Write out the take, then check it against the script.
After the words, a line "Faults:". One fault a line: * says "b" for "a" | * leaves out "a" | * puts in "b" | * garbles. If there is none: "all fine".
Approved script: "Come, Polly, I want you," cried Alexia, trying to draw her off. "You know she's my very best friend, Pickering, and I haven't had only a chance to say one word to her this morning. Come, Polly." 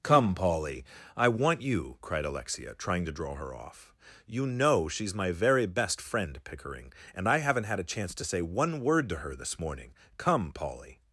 "Come, Polly, I want you," cried Alexia, trying to draw her off. "You know she's my very best friend, Pickering, and I haven't had a chance to say one word to her this morning. Come, Polly."
Faults:
* leaves out "only"